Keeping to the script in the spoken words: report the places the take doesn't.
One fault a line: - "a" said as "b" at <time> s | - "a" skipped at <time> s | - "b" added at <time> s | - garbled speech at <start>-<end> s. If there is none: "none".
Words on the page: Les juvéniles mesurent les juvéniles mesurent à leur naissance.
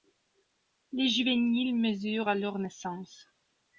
- "les juvéniles mesurent" skipped at 2.3 s